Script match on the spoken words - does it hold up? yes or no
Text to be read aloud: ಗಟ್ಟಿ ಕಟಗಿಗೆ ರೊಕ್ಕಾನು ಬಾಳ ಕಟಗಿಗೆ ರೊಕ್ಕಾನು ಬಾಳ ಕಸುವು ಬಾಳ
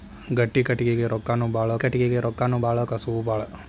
yes